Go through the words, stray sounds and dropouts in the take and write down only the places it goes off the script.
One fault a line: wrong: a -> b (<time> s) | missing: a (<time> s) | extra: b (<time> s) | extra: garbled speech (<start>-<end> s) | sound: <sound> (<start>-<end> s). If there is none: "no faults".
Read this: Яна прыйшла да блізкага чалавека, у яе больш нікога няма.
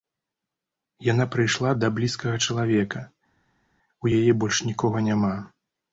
no faults